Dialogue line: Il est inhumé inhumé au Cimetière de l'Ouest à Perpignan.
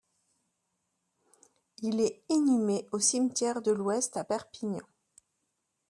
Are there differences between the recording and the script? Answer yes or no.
yes